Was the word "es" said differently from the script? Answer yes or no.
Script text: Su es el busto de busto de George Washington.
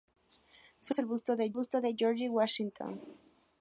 no